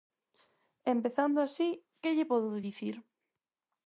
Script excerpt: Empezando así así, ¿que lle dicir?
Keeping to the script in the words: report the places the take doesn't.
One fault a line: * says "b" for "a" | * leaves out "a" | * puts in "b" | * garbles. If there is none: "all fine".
* leaves out "así"
* puts in "podo"